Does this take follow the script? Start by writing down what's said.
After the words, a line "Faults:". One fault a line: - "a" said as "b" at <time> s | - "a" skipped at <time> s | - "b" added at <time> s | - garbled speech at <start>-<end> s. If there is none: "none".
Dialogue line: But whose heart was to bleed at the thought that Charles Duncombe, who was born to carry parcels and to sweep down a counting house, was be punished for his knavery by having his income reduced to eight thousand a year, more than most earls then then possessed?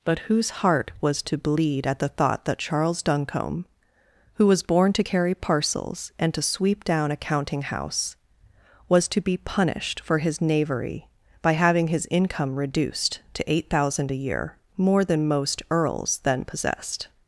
But whose heart was to bleed at the thought that Charles Duncombe, who was born to carry parcels and to sweep down a counting house, was to be punished for his knavery by having his income reduced to eight thousand a year, more than most earls then possessed?
Faults:
- "to" added at 9.1 s
- "then" skipped at 16.4 s